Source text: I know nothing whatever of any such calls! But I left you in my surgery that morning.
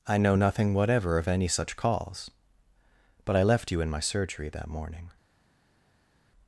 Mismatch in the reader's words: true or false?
false